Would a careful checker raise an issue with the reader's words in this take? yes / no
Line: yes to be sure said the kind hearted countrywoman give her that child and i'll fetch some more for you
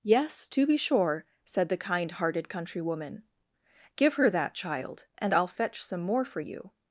no